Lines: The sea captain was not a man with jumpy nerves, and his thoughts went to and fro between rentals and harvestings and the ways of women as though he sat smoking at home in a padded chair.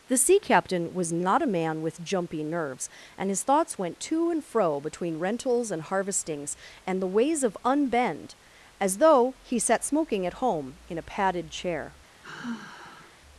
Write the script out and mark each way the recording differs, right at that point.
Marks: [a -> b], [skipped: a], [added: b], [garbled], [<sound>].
The sea captain was not a man with jumpy nerves, and his thoughts went to and fro between rentals and harvestings and the ways of [women -> unbend] as though he sat smoking at home in a padded chair. [sigh]